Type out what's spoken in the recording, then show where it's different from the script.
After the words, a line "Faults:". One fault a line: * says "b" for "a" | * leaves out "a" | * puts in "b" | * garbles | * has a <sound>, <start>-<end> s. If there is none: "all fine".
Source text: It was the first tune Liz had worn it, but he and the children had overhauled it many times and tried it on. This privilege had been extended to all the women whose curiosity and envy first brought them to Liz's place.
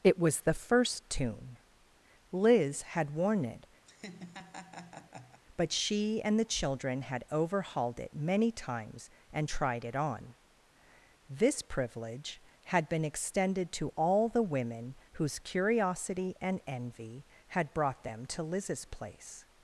It was the first tune Liz had worn it, but she and the children had overhauled it many times and tried it on. This privilege had been extended to all the women whose curiosity and envy had brought them to Liz's place.
Faults:
* has a laugh, 3.9-5.4 s
* says "she" for "he"
* says "had" for "first"